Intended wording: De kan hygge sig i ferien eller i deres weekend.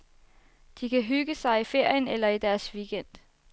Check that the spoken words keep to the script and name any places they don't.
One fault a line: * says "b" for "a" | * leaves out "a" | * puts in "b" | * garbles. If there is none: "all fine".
all fine